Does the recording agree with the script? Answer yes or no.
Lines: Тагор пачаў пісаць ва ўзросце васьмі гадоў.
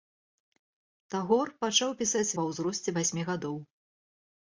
yes